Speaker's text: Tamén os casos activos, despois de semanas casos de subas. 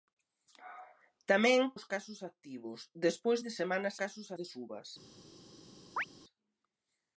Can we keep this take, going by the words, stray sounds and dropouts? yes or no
no